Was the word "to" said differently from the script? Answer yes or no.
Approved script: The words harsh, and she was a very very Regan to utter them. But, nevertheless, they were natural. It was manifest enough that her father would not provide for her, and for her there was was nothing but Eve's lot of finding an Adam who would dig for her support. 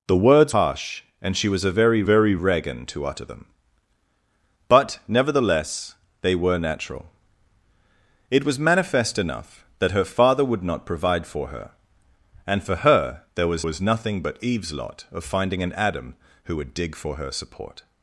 no